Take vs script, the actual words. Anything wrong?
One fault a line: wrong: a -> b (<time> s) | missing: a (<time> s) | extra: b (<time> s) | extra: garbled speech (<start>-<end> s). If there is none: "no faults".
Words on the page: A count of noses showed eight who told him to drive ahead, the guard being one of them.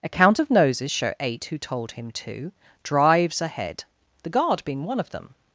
wrong: showed -> show (0.9 s)
wrong: drive -> drives (2.8 s)